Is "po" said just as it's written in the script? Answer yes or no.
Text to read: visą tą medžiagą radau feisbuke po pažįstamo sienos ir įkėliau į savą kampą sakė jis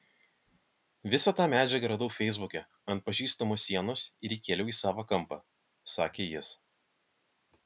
no